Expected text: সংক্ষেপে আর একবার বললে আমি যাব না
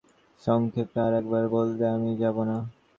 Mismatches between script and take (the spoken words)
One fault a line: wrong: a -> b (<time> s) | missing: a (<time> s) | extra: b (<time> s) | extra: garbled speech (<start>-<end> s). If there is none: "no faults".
no faults